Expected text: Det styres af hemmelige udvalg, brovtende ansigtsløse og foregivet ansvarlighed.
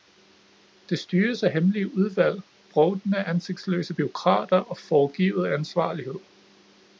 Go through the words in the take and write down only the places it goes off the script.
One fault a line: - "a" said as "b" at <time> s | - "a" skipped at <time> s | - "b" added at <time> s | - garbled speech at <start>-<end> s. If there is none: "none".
- "bureaukrater" added at 3.9 s